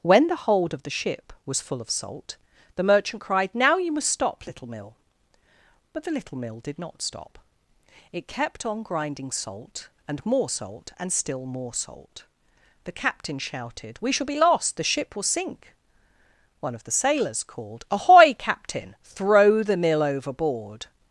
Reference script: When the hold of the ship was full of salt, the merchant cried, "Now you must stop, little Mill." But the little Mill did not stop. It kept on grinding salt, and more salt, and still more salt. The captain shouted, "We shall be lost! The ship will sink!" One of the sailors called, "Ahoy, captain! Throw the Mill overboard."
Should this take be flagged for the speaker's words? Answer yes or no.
no